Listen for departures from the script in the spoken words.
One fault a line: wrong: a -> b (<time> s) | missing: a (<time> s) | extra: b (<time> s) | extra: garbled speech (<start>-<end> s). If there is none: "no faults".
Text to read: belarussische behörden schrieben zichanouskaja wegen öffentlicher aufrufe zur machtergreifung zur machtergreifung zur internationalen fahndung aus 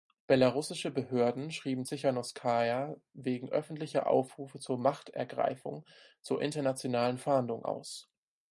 missing: machtergreifung zur (6.4 s)